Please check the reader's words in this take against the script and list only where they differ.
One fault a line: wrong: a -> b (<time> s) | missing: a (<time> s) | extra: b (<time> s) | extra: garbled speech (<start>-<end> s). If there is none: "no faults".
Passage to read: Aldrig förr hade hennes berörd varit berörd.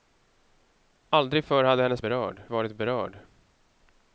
no faults